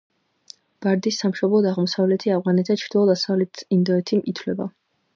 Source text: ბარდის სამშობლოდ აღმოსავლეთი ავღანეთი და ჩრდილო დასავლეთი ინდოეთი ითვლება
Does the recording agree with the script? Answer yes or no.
yes